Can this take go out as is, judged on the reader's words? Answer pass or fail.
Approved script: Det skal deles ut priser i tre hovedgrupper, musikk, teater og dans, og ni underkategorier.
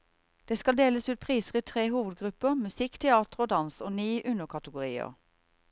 pass